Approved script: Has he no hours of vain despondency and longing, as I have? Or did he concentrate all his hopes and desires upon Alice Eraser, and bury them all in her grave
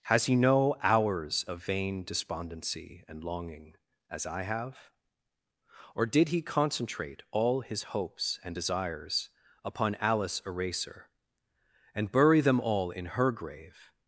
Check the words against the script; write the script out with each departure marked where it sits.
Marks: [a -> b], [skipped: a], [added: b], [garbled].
Has he no hours of vain despondency and longing, as I have? Or did he concentrate all his hopes and desires upon Alice Eraser, and bury them all in her grave